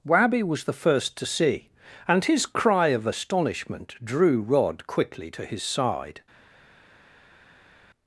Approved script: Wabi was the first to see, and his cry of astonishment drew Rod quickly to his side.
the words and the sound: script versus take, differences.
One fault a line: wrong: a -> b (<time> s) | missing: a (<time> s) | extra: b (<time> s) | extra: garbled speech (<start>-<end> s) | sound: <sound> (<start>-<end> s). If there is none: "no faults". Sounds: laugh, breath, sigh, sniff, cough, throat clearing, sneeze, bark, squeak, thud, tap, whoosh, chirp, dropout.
no faults